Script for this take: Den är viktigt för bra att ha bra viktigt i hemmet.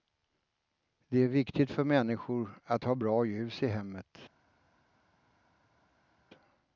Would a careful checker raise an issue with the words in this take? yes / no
yes